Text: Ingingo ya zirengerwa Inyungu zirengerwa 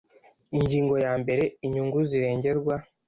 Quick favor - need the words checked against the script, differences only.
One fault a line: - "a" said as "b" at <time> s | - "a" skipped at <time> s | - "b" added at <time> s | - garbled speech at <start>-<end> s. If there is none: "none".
- "zirengerwa" said as "mbere" at 1.2 s